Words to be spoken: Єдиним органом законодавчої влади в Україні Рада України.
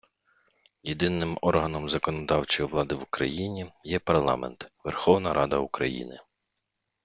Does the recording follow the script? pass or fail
fail